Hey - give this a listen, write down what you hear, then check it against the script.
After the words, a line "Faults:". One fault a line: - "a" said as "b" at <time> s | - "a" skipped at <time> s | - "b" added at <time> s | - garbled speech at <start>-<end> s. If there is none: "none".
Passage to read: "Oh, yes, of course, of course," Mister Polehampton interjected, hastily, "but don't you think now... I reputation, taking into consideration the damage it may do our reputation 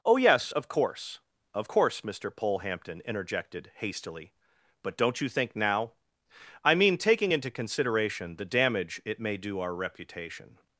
"Oh, yes, of course, of course," Mister Polehampton interjected, hastily, "but don't you think now... I mean, taking into consideration the damage it may do our reputation
Faults:
- "reputation" said as "mean" at 6.7 s